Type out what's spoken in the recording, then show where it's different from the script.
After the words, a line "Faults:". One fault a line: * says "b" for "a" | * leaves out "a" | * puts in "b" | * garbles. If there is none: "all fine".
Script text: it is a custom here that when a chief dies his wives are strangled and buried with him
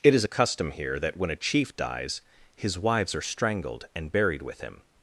it is a custom here that when a chief dies his wives are strangled and buried with him
Faults:
all fine